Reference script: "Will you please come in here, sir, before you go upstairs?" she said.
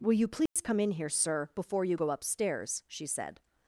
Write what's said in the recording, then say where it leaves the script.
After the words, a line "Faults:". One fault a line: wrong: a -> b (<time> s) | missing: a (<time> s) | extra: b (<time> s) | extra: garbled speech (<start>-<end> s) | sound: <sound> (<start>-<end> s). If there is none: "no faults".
"Will you please come in here, sir, before you go upstairs?" she said.
Faults:
sound: dropout (0.5-0.6 s)